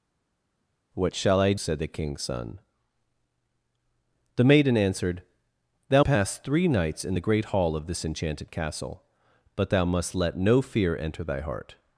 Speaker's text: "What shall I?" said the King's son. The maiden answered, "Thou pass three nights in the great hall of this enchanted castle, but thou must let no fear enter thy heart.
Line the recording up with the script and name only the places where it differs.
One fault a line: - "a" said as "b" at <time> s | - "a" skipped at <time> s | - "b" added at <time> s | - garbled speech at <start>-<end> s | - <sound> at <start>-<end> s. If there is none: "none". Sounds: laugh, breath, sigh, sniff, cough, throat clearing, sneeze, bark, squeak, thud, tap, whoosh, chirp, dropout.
none